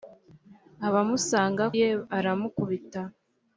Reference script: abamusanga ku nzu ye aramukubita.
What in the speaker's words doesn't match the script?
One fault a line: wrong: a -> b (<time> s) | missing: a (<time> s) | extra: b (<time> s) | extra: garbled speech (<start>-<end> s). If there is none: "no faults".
missing: ku nzu (1.6 s)